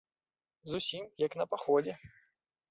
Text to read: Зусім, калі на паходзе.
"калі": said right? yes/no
no